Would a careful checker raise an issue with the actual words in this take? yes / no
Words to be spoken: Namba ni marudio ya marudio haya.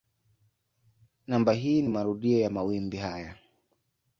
yes